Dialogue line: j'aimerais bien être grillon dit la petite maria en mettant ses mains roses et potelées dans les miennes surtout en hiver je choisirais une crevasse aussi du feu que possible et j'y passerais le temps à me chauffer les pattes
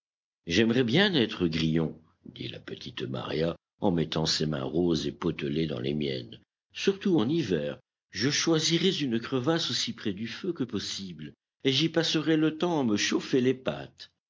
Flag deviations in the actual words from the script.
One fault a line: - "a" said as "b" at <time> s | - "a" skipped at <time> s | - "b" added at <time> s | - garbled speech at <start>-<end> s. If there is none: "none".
- "près" added at 9.9 s